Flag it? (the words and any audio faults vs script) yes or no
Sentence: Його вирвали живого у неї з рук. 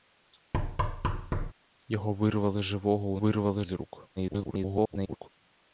yes